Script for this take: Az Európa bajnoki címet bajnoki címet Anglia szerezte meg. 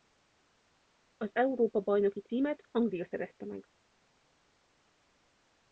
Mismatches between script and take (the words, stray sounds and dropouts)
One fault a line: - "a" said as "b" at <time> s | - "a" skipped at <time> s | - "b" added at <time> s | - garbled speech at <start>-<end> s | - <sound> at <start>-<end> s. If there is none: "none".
- "bajnoki címet" skipped at 2.7 s